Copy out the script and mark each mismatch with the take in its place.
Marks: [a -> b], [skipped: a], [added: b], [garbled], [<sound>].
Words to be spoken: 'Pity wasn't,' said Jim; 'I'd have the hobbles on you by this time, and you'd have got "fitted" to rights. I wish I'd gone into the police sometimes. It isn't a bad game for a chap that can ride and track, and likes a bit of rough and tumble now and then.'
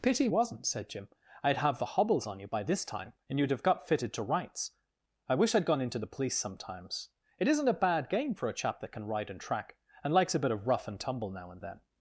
'Pity wasn't,' said Jim; 'I'd have the hobbles on you by this time, and you'd have got "fitted" to rights. I wish I'd gone into the police sometimes. It isn't a bad game for a chap that can ride and track, and likes a bit of rough and tumble now and then.'